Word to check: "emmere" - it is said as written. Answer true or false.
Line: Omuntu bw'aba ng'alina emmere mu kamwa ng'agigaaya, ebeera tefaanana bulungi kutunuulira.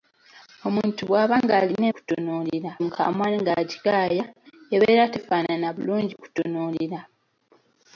false